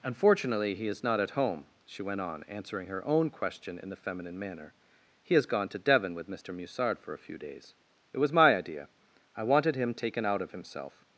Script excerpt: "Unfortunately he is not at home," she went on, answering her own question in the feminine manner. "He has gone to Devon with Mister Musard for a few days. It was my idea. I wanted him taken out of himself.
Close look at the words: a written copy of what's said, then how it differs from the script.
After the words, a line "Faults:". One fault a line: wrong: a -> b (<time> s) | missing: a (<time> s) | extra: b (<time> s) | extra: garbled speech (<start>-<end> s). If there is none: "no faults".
"Unfortunately he is not at home," she went on, answering her own question in the feminine manner. "He has gone to Devon with Mister Musard for a few days. It was my idea. I wanted him taken out of himself.
Faults:
no faults